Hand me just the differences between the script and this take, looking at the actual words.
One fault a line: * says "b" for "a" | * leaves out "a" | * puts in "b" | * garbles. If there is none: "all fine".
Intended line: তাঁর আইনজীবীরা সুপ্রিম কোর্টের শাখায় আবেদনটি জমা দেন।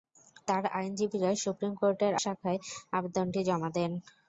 all fine